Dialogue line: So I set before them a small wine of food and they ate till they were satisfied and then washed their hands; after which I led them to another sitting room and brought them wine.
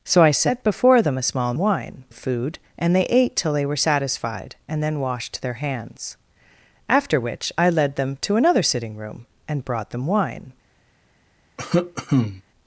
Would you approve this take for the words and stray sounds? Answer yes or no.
no